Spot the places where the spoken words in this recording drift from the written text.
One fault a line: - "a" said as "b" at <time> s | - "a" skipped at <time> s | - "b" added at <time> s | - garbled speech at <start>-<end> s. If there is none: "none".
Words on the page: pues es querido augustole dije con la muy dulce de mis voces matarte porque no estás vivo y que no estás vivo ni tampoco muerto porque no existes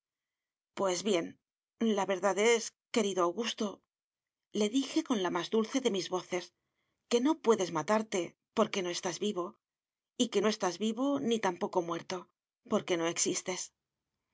- "bien la verdad" added at 1.0 s
- "muy" said as "más" at 5.3 s
- "que no puedes" added at 7.1 s